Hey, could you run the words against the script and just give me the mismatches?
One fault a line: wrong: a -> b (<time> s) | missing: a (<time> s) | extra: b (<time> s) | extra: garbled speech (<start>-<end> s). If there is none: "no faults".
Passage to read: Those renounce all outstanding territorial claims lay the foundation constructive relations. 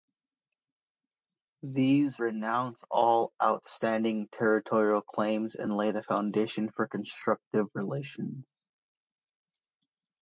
wrong: Those -> These (1.6 s)
extra: and (5.6 s)
extra: for (6.7 s)